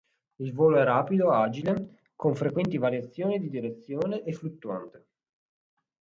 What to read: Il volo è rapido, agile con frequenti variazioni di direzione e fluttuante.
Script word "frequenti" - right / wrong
right